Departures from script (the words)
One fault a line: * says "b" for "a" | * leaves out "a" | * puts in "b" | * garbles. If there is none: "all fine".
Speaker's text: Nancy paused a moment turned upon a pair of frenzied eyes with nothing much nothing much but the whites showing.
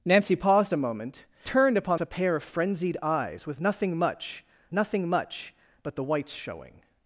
all fine